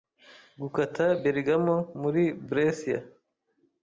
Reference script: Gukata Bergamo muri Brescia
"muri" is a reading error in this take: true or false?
false